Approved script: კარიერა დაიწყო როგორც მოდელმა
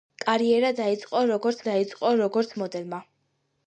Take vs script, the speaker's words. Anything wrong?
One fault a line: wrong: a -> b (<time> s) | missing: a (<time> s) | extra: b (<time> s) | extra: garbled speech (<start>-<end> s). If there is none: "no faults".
extra: დაიწყო როგორც (1.7 s)